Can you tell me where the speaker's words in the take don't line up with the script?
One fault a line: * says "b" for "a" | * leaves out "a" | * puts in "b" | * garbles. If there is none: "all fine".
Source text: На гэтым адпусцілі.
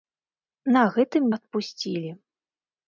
all fine